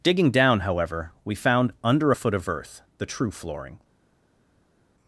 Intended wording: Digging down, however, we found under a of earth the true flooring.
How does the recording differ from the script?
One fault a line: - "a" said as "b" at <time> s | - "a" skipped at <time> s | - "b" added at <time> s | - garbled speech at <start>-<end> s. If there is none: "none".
- "foot" added at 2.1 s